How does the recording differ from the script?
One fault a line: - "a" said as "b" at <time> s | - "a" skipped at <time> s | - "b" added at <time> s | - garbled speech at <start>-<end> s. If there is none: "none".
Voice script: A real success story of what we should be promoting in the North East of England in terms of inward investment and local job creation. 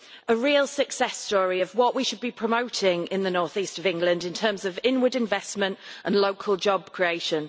none